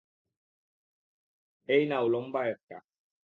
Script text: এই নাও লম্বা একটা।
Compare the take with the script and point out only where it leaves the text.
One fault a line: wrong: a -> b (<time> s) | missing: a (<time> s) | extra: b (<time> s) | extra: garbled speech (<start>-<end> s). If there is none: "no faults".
no faults